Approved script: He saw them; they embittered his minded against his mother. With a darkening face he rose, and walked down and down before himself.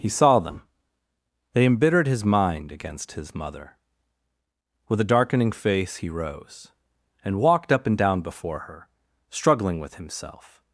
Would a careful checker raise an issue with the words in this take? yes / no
yes